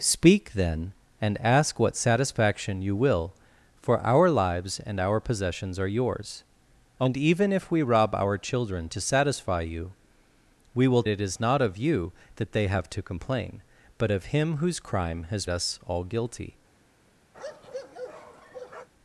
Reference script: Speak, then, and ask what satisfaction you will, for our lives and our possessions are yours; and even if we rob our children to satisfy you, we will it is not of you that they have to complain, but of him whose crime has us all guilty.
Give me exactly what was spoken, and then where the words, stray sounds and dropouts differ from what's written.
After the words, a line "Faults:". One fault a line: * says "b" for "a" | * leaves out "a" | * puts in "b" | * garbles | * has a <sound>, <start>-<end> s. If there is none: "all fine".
Speak, then, and ask what satisfaction you will, for our lives and our possessions are yours; and even if we rob our children to satisfy you, we will it is not of you that they have to complain, but of him whose crime has us all guilty.
Faults:
* has a bark, 17.3-18.9 s